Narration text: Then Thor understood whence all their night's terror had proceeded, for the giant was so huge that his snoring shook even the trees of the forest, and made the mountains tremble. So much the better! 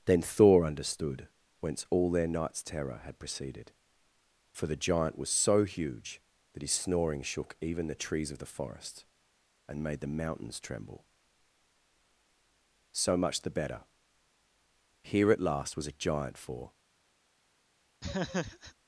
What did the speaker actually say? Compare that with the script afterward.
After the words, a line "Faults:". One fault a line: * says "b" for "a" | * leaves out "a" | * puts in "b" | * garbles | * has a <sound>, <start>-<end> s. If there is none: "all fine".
Then Thor understood whence all their night's terror had proceeded, for the giant was so huge that his snoring shook even the trees of the forest, and made the mountains tremble. So much the better! Here at last was a giant for
Faults:
* puts in "Here at last was a giant for"
* has a laugh, 18.0-18.7 s